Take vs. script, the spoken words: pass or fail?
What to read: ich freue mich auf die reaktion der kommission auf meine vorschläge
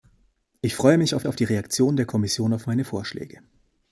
fail